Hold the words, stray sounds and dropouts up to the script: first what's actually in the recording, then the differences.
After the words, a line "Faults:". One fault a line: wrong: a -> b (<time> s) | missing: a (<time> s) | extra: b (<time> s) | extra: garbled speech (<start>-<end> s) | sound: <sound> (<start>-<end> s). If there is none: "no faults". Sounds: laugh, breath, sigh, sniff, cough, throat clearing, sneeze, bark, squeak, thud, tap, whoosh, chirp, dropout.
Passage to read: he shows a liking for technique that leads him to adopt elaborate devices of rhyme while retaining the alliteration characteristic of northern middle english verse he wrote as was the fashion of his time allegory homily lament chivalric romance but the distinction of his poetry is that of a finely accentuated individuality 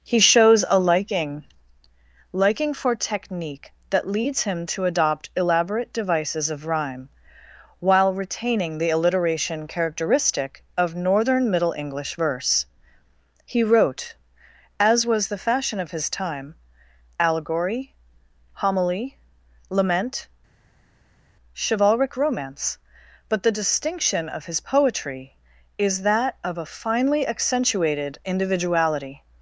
he shows a liking liking for technique that leads him to adopt elaborate devices of rhyme while retaining the alliteration characteristic of northern middle english verse he wrote as was the fashion of his time allegory homily lament chivalric romance but the distinction of his poetry is that of a finely accentuated individuality
Faults:
extra: liking (2.3 s)